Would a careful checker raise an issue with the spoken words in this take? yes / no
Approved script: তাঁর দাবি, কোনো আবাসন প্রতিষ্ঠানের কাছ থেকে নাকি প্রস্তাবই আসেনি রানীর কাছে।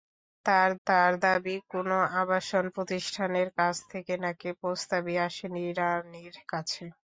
yes